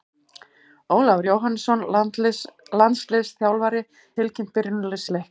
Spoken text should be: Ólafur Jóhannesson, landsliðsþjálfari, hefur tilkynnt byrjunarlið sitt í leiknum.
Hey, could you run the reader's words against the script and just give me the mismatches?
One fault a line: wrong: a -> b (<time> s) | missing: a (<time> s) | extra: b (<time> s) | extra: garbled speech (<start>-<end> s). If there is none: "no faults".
missing: hefur (3.8 s)
missing: sitt (5.1 s)